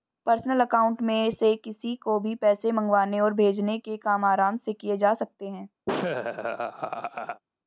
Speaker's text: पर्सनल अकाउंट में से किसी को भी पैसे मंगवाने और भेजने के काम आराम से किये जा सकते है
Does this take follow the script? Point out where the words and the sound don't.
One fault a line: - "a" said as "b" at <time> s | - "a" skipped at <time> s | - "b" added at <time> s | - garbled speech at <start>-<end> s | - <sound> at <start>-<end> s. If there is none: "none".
- laugh at 5.9-7.4 s